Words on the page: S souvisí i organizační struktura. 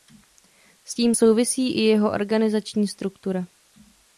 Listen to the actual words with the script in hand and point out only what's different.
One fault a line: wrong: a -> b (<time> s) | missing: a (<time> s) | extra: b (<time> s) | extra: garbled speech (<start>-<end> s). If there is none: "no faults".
extra: tím (0.9 s)
extra: jeho (1.8 s)